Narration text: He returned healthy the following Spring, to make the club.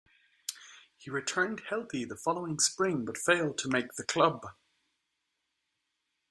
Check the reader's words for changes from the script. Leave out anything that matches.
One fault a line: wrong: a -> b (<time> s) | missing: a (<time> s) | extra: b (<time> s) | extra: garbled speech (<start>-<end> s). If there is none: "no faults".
extra: but failed (3.0 s)